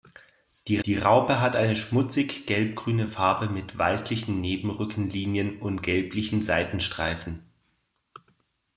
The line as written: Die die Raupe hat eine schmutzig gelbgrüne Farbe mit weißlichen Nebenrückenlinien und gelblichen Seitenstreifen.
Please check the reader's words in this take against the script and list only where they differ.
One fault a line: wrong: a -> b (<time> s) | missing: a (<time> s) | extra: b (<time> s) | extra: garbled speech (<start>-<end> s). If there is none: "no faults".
no faults